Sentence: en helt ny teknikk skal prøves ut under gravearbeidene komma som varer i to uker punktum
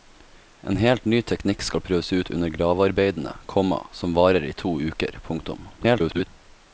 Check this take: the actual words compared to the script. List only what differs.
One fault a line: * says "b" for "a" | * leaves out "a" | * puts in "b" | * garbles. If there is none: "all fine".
* garbles